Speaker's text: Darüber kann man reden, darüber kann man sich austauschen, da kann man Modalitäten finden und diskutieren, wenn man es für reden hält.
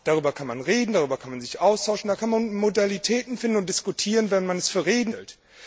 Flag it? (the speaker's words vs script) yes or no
no